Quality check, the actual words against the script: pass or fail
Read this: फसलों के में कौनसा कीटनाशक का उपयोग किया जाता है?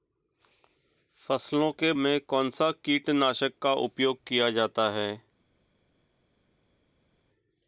pass